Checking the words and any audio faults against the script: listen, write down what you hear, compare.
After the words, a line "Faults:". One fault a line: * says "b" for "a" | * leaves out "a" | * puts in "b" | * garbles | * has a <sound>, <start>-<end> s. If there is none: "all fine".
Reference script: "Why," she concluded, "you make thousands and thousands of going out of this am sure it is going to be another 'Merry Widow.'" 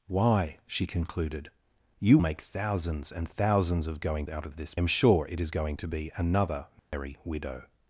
"Why," she concluded, "you make thousands and thousands of going out of this am sure it is going to be another 'Merry Widow.'"
Faults:
* has a dropout, 6.8-6.9 s